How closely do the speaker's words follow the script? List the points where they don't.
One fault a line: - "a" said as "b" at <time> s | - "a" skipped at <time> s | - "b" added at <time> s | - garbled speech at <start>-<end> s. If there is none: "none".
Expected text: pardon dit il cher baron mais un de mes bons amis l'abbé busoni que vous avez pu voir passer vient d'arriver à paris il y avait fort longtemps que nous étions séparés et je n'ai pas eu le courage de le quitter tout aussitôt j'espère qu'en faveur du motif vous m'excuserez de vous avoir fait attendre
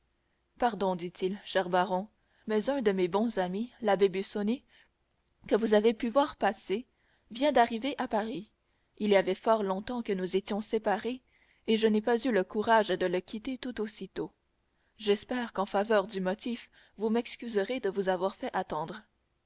none